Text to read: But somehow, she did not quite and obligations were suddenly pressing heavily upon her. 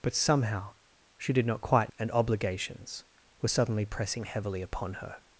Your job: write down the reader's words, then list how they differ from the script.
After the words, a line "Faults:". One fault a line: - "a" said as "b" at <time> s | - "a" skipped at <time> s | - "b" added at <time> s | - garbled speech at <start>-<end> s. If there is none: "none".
But somehow, she did not quite and obligations were suddenly pressing heavily upon her.
Faults:
none